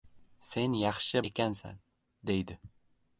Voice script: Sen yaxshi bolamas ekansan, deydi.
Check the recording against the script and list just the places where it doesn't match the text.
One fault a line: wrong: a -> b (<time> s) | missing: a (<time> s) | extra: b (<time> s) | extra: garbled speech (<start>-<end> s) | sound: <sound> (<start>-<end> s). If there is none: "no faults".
missing: bolamas (1.2 s)